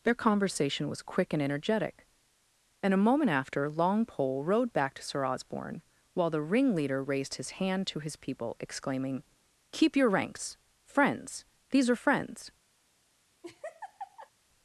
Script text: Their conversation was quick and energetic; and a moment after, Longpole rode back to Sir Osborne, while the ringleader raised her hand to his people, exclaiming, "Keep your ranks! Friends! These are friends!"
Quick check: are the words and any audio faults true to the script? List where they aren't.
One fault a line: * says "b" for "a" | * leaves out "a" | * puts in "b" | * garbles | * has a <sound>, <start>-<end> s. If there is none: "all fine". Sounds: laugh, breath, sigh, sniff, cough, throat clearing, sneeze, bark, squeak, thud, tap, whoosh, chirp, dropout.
* says "his" for "her"
* has a laugh, 13.4-14.3 s